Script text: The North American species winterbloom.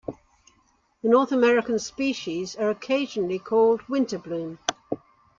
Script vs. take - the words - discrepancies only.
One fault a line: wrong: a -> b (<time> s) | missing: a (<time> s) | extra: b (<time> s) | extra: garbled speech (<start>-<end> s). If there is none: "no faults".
extra: are occasionally called (2.5 s)